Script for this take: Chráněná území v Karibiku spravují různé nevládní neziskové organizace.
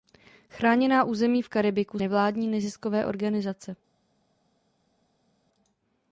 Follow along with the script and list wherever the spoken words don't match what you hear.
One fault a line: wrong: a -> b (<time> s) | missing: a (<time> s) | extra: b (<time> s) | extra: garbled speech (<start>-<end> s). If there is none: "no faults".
missing: spravují různé (2.0 s)